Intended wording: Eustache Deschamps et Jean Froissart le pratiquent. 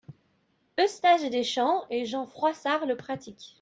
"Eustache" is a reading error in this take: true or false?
false